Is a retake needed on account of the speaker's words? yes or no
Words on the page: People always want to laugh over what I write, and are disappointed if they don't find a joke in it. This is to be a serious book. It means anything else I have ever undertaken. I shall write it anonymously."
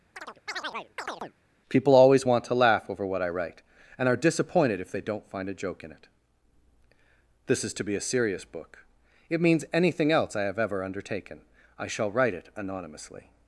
no